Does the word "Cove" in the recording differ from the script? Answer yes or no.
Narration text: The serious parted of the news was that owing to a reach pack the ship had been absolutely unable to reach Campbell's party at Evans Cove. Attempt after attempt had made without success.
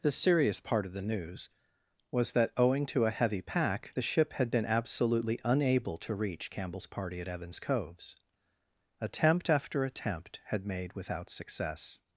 yes